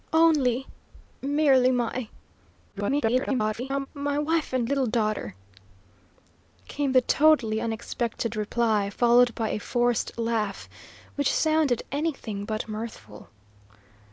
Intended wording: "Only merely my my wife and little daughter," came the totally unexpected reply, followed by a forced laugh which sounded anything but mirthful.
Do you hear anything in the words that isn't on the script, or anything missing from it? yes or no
yes